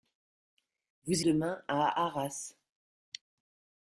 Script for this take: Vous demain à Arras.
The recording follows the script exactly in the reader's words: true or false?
true